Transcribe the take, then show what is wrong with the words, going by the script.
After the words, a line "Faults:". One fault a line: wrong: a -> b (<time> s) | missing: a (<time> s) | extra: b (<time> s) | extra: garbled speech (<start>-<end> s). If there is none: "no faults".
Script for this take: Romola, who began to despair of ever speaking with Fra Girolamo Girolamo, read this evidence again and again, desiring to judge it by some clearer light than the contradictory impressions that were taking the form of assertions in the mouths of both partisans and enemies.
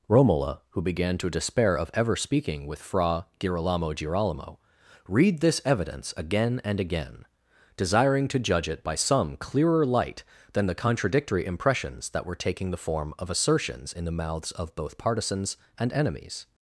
Romola, who began to despair of ever speaking with Fra Girolamo Girolamo, read this evidence again and again, desiring to judge it by some clearer light than the contradictory impressions that were taking the form of assertions in the mouths of both partisans and enemies.
Faults:
no faults